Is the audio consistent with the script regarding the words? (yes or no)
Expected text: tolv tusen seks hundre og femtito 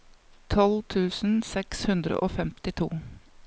yes